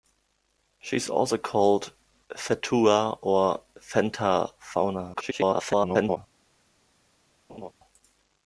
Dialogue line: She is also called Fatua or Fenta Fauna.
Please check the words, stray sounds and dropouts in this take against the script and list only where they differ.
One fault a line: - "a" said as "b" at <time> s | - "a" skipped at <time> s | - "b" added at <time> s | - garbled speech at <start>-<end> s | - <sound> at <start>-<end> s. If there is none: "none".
- garbled speech at 5.1-6.2 s
- laugh at 7.5-7.7 s